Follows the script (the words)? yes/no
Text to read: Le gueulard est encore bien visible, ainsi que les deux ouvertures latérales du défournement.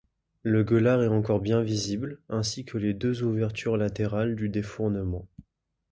yes